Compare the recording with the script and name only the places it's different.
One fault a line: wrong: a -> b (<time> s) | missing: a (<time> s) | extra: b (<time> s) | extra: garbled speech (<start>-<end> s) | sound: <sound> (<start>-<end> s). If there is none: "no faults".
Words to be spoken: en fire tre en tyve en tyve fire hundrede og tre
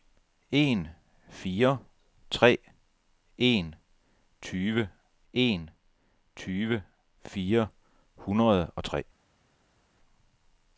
no faults